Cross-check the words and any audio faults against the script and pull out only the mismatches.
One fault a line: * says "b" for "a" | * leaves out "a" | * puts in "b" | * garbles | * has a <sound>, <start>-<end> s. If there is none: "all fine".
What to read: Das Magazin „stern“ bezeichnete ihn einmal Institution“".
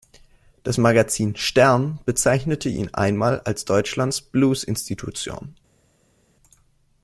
* puts in "als Deutschlands Blues"